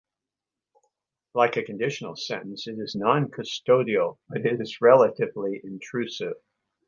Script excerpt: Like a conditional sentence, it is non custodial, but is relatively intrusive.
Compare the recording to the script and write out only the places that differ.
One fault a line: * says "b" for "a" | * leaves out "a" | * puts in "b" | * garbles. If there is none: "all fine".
* puts in "it"